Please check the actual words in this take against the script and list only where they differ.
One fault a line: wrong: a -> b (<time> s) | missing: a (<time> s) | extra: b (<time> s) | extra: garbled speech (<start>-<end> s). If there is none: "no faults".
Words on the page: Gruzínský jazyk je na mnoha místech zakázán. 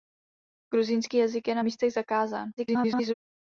missing: mnoha (1.6 s)
extra: garbled speech (2.6-3.1 s)